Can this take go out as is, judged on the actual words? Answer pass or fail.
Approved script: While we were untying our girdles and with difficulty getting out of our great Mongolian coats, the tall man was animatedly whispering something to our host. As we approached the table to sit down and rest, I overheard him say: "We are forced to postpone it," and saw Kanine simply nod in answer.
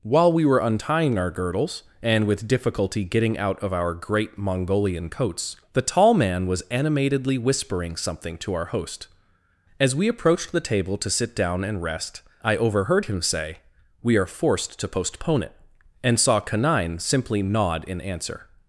pass